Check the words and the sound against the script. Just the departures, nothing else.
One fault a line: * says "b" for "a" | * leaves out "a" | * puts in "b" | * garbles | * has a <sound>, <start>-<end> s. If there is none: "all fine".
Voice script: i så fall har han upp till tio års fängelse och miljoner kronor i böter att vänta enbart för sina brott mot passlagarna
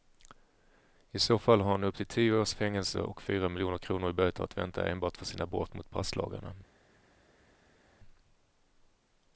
* puts in "fyra"